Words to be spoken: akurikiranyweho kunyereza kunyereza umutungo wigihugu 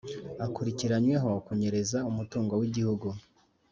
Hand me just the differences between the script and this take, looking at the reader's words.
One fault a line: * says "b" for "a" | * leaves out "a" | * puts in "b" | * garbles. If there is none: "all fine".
* leaves out "kunyereza"